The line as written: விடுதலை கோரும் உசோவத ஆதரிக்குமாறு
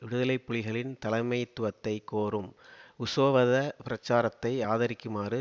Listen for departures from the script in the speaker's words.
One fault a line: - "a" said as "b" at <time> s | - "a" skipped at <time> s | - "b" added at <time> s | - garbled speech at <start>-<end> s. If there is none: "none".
- "புலிகளின் தலைமைத்துவத்தை" added at 0.5 s
- "பிரச்சாரத்தை" added at 3.8 s